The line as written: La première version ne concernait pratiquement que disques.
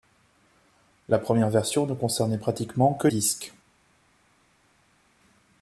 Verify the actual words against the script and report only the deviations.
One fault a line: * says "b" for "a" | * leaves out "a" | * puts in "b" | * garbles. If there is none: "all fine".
all fine